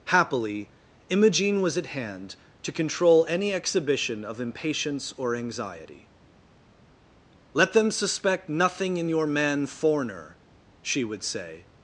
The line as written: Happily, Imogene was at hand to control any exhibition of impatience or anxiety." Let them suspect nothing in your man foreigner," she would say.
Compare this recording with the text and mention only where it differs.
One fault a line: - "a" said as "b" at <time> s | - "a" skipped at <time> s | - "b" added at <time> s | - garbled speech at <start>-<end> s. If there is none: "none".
none